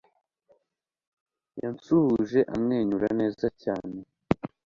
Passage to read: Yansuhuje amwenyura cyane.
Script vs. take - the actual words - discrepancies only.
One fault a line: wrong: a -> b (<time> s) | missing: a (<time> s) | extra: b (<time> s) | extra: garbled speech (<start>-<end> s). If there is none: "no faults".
extra: neza (3.2 s)